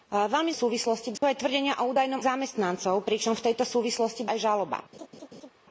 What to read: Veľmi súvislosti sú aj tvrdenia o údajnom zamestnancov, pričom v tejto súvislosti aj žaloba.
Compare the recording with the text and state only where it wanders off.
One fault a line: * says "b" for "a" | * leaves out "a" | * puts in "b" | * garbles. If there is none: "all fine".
all fine